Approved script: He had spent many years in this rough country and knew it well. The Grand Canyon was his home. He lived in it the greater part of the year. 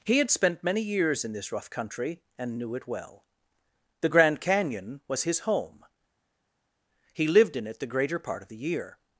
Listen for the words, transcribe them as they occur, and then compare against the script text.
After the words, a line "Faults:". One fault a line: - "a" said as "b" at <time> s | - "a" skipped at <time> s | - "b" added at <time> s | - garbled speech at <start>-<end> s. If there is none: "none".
He had spent many years in this rough country and knew it well. The Grand Canyon was his home. He lived in it the greater part of the year.
Faults:
none